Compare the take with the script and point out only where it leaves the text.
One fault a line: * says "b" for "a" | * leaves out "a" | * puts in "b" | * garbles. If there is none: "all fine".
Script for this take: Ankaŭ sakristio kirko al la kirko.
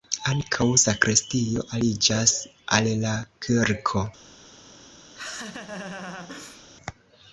* says "aliĝas" for "kirko"